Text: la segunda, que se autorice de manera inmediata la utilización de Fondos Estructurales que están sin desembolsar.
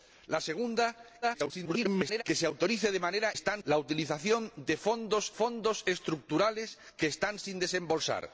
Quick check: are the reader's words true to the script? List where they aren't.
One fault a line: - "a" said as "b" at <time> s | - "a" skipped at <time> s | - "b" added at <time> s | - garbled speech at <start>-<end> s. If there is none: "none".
- garbled speech at 1.2-2.2 s
- "inmediata" said as "están" at 3.3 s
- "Fondos" added at 5.3 s